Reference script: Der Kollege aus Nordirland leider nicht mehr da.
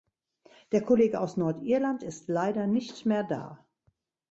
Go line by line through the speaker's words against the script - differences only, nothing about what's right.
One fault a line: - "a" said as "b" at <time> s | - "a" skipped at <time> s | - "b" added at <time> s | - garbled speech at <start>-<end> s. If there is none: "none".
- "ist" added at 2.0 s